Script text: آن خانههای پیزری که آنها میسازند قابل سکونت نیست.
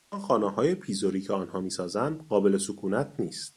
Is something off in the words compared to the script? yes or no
no